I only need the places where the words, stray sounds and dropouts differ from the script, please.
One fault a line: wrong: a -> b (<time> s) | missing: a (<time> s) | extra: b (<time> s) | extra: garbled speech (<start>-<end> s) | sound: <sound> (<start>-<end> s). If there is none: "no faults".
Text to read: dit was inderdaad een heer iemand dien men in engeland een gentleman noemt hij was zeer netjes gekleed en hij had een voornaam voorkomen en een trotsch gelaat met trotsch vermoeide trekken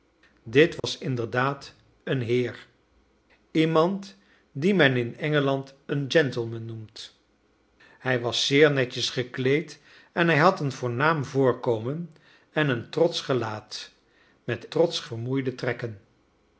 sound: dropout (0.8-0.8 s)